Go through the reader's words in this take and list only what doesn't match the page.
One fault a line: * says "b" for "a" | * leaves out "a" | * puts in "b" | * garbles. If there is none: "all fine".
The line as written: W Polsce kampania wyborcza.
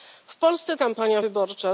all fine